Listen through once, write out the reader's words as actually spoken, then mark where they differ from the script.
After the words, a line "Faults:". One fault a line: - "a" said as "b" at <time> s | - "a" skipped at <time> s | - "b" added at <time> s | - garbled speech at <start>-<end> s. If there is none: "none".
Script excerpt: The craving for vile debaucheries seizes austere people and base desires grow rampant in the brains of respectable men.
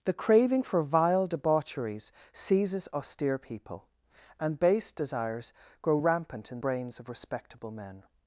The craving for vile debaucheries seizes austere people and base desires grow rampant in brains of respectable men.
Faults:
- "the" skipped at 6.6 s